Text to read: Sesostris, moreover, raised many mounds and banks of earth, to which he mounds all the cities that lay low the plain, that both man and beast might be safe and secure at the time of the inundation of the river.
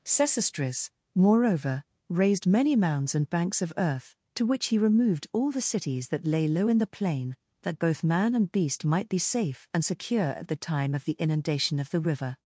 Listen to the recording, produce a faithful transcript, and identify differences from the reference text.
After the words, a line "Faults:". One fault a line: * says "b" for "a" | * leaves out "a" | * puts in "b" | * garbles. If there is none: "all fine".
Sesostris, moreover, raised many mounds and banks of earth, to which he removed all the cities that lay low in the plain, that both man and beast might be safe and secure at the time of the inundation of the river.
Faults:
* says "removed" for "mounds"
* puts in "in"